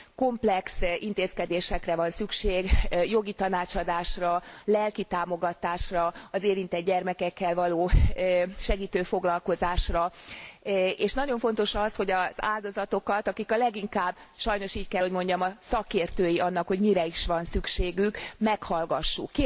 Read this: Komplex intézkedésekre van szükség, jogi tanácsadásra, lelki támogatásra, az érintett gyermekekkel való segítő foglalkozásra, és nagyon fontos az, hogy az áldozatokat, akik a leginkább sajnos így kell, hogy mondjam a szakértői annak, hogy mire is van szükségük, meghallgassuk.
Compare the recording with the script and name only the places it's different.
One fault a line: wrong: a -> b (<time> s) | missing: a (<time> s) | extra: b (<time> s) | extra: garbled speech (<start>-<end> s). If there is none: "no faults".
no faults